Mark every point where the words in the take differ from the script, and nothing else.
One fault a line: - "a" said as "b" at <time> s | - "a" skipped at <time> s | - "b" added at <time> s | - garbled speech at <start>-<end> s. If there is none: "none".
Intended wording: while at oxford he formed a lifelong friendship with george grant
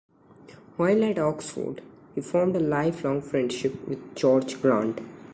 none